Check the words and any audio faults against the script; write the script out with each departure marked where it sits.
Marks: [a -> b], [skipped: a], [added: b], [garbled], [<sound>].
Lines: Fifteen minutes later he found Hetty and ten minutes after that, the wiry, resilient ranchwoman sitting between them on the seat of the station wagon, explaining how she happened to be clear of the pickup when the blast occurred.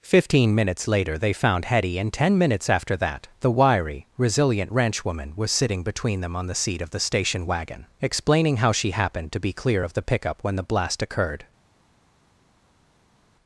Fifteen minutes later [he -> they] found Hetty and ten minutes after that, the wiry, resilient ranchwoman [added: was] sitting between them on the seat of the station wagon, explaining how she happened to be clear of the pickup when the blast occurred.